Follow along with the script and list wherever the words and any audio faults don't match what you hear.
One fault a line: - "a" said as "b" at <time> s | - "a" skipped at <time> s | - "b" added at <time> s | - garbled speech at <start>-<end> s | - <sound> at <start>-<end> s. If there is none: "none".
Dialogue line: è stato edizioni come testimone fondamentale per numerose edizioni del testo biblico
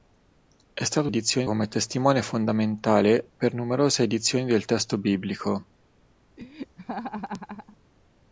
- laugh at 6.4-7.8 s